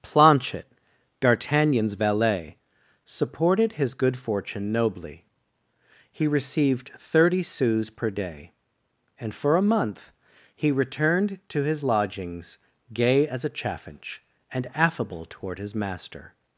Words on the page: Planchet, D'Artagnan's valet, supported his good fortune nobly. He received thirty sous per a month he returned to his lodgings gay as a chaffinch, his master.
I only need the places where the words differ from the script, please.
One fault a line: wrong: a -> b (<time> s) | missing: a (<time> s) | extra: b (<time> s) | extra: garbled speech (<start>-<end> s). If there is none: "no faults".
extra: day and for (8.1 s)
extra: and affable toward (14.5 s)